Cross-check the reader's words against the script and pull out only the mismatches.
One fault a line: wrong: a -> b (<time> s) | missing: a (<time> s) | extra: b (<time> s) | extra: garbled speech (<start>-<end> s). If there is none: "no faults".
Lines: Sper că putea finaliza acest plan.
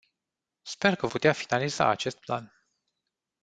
no faults